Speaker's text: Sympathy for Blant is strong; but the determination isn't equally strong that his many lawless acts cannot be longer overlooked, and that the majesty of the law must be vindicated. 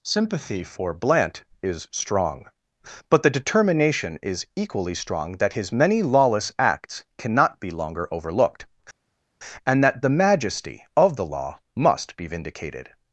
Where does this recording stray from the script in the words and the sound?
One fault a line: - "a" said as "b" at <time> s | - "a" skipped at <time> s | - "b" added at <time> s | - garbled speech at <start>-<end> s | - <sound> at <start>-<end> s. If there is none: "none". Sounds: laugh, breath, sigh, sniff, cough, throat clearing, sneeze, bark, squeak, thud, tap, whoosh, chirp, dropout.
- "isn't" said as "is" at 4.2 s